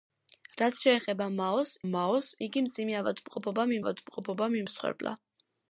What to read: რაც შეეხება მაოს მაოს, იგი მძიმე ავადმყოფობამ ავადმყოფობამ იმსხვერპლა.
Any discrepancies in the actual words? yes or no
no